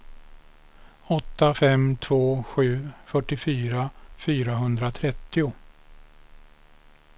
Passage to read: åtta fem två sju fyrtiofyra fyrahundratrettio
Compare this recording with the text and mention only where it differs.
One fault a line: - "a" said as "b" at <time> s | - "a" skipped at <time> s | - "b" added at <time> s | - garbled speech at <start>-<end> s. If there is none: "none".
none